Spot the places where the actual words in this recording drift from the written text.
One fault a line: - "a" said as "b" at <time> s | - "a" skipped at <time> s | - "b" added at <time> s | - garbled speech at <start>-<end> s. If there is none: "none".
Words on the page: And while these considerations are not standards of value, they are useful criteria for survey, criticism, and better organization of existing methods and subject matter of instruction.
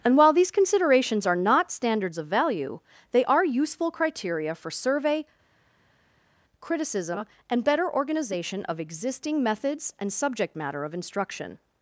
none